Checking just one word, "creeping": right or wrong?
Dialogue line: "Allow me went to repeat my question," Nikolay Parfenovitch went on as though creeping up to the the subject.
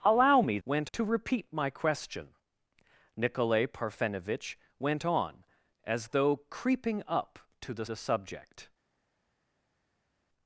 right